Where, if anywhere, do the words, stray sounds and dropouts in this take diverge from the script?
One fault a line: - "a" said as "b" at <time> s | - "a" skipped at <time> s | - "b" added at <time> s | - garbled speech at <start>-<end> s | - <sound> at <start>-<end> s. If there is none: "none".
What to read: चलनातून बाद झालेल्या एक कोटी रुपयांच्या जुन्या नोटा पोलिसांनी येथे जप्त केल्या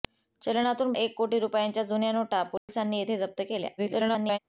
- "बाद झालेल्या" skipped at 0.9 s
- dropout at 2.6-2.7 s
- garbled speech at 3.8-4.4 s